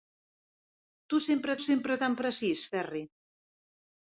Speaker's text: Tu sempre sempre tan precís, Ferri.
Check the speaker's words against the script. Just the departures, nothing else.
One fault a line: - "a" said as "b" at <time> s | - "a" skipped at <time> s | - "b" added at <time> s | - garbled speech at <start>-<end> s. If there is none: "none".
none